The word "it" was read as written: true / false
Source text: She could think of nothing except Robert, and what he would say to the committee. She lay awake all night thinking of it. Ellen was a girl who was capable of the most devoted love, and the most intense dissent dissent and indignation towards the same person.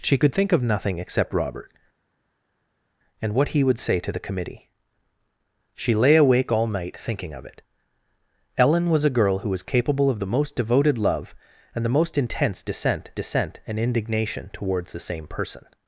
true